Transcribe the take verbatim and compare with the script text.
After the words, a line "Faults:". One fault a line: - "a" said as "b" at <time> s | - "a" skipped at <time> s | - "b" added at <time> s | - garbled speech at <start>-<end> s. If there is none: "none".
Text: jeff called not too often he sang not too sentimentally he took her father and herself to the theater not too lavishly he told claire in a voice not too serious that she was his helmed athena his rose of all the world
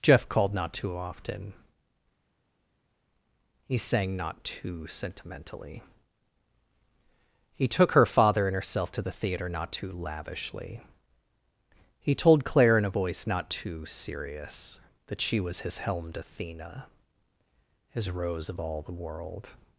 jeff called not too often he sang not too sentimentally he took her father and herself to the theater not too lavishly he told claire in a voice not too serious that she was his helmed athena his rose of all the world
Faults:
none